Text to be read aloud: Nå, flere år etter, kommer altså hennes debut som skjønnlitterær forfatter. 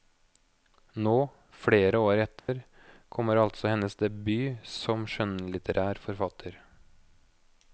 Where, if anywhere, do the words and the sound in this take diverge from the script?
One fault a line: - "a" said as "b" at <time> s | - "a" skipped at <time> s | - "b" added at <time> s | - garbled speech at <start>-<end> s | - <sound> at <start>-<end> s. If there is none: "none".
- dropout at 2.4-2.5 s